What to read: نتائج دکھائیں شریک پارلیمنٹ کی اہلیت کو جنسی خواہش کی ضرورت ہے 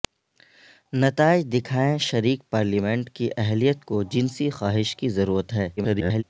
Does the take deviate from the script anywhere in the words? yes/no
yes